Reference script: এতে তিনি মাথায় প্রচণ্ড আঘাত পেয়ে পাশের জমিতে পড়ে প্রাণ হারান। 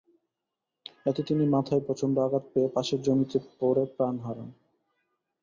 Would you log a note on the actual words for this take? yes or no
no